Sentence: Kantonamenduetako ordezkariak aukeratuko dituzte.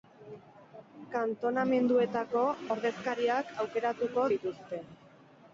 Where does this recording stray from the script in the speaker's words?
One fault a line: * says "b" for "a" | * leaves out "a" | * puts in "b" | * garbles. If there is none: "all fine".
all fine